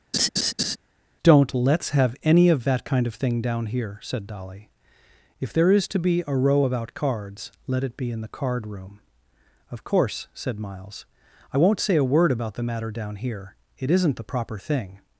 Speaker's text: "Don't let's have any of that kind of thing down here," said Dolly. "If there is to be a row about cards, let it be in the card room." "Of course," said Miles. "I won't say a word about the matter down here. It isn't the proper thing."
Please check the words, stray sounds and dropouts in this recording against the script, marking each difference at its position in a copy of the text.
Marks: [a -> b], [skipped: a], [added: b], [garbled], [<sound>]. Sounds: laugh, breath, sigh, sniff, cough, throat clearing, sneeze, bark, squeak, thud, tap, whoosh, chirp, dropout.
[laugh] "Don't let's have any of that kind of thing down here," said Dolly. "If there is to be a row about cards, let it be in the card room." "Of course," said Miles. "I won't say a word about the matter down here. It isn't the proper thing."